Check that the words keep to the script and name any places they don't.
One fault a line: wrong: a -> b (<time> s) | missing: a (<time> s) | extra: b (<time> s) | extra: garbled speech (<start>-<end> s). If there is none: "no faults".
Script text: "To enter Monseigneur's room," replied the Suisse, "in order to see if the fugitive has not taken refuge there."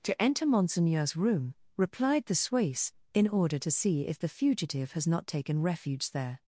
no faults